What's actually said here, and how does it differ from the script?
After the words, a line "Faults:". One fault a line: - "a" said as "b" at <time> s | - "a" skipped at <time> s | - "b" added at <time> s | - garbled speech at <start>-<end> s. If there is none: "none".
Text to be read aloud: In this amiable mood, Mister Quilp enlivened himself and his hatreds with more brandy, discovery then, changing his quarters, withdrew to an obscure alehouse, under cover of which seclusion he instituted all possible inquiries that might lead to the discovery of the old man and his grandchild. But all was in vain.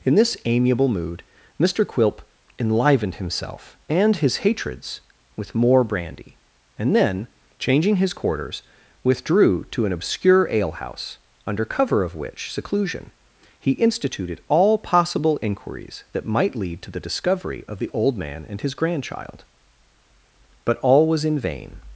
In this amiable mood, Mister Quilp enlivened himself and his hatreds with more brandy, and then, changing his quarters, withdrew to an obscure alehouse, under cover of which seclusion he instituted all possible inquiries that might lead to the discovery of the old man and his grandchild. But all was in vain.
Faults:
- "discovery" said as "and" at 6.8 s